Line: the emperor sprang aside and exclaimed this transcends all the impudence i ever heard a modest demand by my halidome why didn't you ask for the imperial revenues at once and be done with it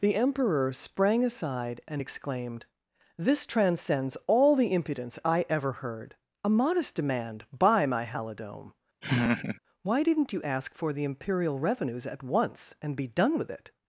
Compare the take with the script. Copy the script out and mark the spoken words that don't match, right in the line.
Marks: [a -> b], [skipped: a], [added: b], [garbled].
the emperor sprang aside and exclaimed this transcends all the impudence i ever heard a modest demand by my halidome why didn't you ask for the imperial revenues at once and be done with it